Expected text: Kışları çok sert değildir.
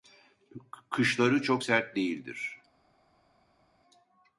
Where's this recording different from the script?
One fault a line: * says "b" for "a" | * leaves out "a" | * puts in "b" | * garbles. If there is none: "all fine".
all fine